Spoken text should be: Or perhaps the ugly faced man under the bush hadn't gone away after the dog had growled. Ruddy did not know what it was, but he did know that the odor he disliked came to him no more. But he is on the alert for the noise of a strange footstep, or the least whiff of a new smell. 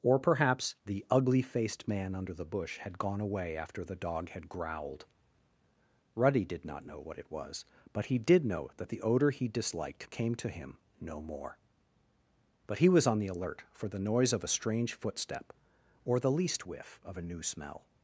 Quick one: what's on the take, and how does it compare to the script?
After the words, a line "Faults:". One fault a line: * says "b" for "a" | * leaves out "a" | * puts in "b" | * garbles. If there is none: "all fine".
Or perhaps the ugly faced man under the bush had gone away after the dog had growled. Ruddy did not know what it was, but he did know that the odor he disliked came to him no more. But he was on the alert for the noise of a strange footstep, or the least whiff of a new smell.
Faults:
* says "had" for "hadn't"
* says "was" for "is"